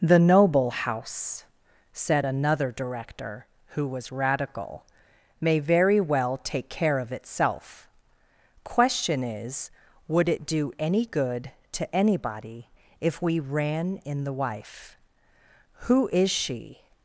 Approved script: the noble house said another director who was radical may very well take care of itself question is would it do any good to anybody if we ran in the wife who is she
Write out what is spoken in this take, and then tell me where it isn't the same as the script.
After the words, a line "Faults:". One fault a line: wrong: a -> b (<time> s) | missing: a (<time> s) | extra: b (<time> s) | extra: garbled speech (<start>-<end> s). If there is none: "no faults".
the noble house said another director who was radical may very well take care of itself question is would it do any good to anybody if we ran in the wife who is she
Faults:
no faults